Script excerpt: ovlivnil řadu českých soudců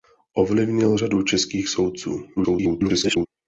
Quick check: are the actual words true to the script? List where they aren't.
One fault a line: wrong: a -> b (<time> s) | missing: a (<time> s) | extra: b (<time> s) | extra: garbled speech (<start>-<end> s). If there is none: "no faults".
extra: garbled speech (2.4-3.3 s)